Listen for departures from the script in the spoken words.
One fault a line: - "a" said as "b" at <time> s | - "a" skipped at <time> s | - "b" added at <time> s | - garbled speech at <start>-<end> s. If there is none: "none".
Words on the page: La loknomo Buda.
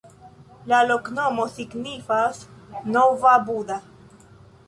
- "signifas nova" added at 1.6 s